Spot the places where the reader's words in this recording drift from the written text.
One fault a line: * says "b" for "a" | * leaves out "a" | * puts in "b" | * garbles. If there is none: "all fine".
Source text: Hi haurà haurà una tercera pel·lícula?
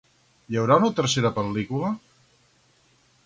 * leaves out "haurà"